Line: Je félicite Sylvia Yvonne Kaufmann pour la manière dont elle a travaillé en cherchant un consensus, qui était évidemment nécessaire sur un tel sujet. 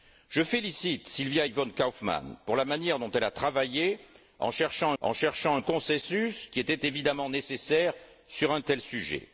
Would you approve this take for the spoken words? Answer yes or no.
no